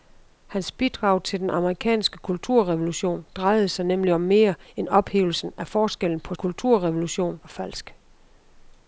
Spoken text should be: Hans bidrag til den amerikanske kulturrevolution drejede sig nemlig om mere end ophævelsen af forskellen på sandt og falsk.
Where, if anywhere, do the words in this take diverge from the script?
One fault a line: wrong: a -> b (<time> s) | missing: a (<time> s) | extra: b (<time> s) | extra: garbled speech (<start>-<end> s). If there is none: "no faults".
wrong: sandt -> kulturrevolution (6.3 s)